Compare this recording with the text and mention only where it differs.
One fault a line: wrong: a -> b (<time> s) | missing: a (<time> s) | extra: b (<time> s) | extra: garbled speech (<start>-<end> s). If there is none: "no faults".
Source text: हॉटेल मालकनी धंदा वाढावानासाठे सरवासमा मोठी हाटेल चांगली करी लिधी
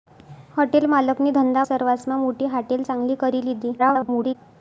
missing: वाढावानासाठे (1.6 s)
extra: garbled speech (3.8-4.4 s)